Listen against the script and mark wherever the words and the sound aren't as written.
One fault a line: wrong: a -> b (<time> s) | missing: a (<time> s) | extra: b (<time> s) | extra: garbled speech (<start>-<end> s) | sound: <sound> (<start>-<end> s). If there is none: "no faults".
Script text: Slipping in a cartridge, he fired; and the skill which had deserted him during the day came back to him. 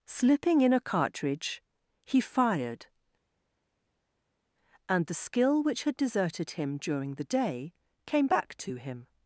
no faults